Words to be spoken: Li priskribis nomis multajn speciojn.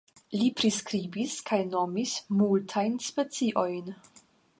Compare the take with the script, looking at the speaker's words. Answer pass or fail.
fail